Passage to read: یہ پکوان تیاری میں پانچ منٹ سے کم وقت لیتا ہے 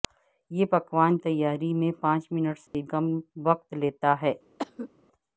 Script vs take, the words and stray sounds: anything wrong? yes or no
yes